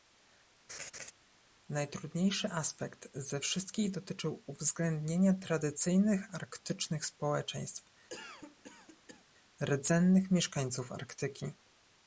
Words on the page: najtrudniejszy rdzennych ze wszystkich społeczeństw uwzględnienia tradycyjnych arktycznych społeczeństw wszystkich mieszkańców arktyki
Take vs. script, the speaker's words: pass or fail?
fail